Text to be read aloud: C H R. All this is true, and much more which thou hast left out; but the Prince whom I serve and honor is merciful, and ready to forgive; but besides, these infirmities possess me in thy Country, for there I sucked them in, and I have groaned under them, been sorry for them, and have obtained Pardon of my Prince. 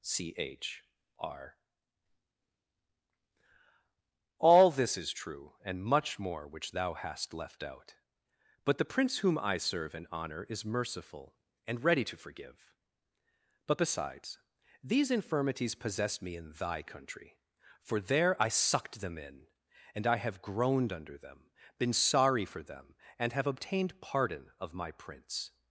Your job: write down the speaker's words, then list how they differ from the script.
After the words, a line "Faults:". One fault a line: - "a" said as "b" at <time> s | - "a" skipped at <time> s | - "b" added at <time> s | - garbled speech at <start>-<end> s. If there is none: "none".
C H R. All this is true, and much more which thou hast left out; but the Prince whom I serve and honor is merciful, and ready to forgive; but besides, these infirmities possess me in thy Country, for there I sucked them in, and I have groaned under them, been sorry for them, and have obtained Pardon of my Prince.
Faults:
none